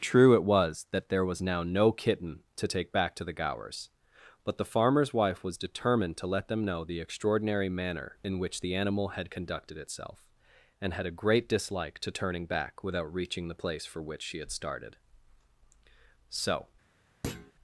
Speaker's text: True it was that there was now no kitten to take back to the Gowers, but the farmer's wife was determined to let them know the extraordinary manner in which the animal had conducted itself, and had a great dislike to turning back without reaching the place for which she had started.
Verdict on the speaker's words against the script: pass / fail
fail